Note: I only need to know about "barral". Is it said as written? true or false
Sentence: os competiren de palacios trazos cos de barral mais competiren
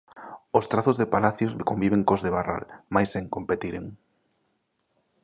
true